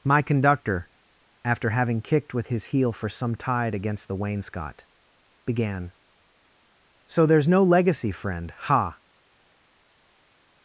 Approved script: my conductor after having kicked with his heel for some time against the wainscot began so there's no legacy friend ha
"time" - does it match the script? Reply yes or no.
no